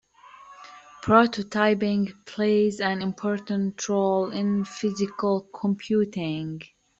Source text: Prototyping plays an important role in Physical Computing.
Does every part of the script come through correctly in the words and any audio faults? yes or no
yes